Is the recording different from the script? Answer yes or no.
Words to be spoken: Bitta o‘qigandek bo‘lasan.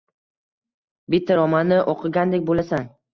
yes